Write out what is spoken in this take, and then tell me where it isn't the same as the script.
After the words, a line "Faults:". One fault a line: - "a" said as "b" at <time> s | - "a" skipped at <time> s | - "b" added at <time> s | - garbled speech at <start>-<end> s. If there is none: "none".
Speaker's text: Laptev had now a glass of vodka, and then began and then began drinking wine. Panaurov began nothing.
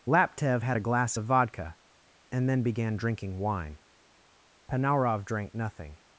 Laptev had a glass of vodka, and then began drinking wine. Panaurov drank nothing.
Faults:
- "now" skipped at 0.8 s
- "and then began" skipped at 3.0 s
- "began" said as "drank" at 5.2 s